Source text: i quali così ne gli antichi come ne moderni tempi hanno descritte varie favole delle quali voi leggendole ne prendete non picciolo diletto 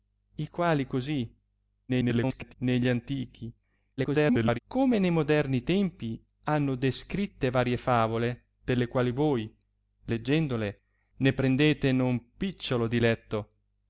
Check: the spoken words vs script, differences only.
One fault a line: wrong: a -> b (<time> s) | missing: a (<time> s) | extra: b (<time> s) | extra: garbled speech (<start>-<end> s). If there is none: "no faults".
extra: garbled speech (1.9-2.5 s)
extra: garbled speech (4.0-4.6 s)